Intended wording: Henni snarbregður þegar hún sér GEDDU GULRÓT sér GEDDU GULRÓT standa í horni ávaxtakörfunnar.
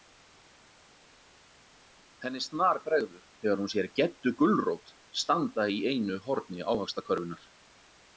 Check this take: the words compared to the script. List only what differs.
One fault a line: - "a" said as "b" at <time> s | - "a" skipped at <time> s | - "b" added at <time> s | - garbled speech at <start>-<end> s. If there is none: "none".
- "sér GEDDU GULRÓT" skipped at 4.9 s
- "einu" added at 5.9 s